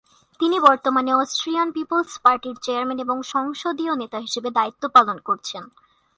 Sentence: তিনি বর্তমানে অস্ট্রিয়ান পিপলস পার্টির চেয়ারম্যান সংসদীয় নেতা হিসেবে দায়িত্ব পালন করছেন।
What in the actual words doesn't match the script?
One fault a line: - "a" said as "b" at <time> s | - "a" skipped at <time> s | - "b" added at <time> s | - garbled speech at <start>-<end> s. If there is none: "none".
- "এবং" added at 3.0 s